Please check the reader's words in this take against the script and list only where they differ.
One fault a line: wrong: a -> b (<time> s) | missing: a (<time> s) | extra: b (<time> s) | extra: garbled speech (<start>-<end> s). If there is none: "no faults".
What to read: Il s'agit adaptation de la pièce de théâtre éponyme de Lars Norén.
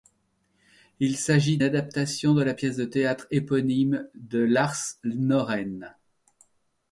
no faults